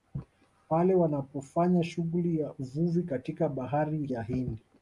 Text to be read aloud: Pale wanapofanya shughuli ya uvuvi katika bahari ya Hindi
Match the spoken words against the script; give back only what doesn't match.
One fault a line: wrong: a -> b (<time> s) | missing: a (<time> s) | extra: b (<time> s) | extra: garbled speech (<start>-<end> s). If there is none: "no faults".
no faults